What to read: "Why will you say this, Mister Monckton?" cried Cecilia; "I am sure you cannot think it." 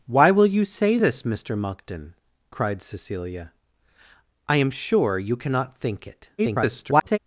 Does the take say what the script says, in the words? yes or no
no